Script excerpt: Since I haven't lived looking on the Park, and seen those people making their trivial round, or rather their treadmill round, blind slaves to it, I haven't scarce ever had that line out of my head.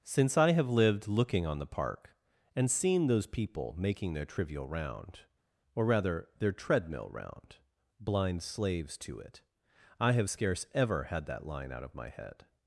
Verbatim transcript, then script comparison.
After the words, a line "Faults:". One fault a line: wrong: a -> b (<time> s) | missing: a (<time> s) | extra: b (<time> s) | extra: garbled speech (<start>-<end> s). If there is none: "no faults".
Since I have lived looking on the Park, and seen those people making their trivial round, or rather their treadmill round, blind slaves to it, I have scarce ever had that line out of my head.
Faults:
wrong: haven't -> have (0.5 s)
wrong: haven't -> have (10.1 s)